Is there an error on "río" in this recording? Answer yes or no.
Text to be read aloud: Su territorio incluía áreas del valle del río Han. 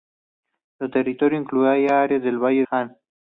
yes